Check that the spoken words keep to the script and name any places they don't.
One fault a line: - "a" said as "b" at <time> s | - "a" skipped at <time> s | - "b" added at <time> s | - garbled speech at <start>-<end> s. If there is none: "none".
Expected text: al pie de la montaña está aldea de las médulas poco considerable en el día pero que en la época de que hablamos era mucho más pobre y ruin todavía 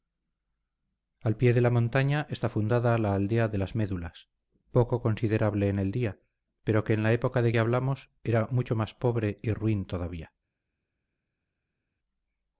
- "fundada la" added at 2.5 s